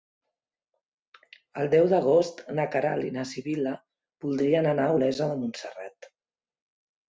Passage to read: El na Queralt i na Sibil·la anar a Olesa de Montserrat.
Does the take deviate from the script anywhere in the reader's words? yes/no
yes